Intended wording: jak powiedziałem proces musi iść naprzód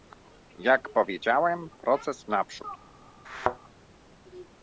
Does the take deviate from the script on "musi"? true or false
true